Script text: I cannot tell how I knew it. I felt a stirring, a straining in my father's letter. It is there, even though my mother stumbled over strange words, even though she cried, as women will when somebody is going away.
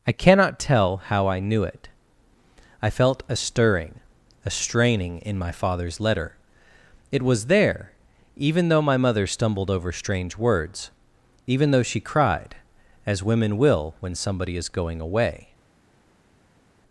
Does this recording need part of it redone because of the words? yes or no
yes